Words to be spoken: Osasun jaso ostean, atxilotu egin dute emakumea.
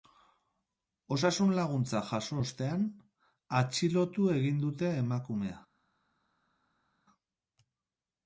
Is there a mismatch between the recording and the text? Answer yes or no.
yes